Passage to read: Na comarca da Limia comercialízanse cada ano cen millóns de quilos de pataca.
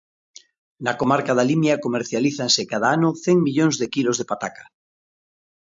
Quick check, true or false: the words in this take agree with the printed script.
true